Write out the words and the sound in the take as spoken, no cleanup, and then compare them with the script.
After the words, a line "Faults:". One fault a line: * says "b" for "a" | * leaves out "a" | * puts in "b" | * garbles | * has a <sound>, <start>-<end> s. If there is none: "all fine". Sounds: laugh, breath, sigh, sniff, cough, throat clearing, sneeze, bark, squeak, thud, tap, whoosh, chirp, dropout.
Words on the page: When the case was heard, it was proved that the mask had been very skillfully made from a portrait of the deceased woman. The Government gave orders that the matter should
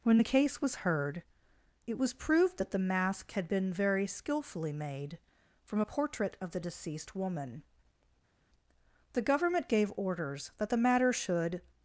When the case was heard, it was proved that the mask had been very skillfully made from a portrait of the deceased woman. The Government gave orders that the matter should
Faults:
all fine